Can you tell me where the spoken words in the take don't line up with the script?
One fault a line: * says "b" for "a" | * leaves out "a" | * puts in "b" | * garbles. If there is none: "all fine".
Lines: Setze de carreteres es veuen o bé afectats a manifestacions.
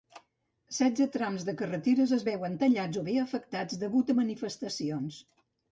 * puts in "trams"
* puts in "tallats"
* puts in "degut"